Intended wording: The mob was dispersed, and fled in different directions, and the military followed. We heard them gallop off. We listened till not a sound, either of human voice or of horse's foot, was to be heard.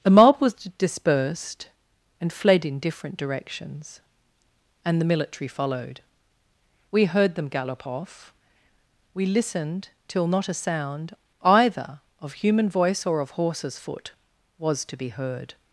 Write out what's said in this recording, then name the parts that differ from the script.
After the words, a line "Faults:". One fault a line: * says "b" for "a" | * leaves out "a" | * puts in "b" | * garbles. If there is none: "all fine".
The mob was dispersed, and fled in different directions, and the military followed. We heard them gallop off. We listened till not a sound, either of human voice or of horse's foot, was to be heard.
Faults:
all fine